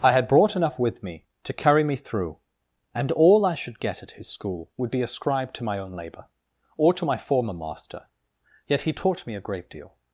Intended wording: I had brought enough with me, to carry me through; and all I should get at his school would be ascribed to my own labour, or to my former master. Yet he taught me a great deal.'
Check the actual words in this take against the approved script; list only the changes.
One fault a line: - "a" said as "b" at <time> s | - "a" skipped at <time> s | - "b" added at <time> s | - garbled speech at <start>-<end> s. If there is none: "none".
none